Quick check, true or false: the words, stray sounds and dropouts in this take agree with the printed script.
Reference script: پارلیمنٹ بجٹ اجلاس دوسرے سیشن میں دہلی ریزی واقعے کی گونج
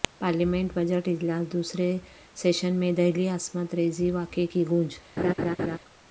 false